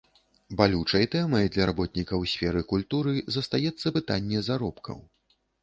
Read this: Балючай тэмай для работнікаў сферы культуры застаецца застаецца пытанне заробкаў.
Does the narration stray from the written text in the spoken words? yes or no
yes